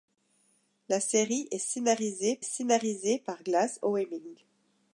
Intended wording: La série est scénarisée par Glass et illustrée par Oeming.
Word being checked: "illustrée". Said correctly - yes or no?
no